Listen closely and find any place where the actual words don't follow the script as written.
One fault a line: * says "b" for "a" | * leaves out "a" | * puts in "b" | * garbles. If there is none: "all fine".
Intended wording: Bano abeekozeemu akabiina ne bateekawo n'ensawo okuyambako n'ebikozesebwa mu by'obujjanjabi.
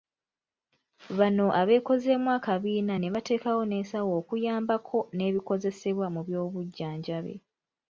all fine